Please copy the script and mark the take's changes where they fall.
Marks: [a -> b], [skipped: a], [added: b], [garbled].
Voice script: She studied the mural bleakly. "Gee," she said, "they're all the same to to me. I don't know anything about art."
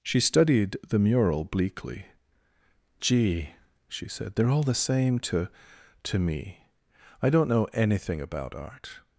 She studied the mural bleakly. "Gee," she said, "they're all the same to to me. I don't know anything about art."